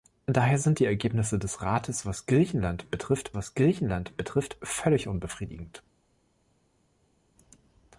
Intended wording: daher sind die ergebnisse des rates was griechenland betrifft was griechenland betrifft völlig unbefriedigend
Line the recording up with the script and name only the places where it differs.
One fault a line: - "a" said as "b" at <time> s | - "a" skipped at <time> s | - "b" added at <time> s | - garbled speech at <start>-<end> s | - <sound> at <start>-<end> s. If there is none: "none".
none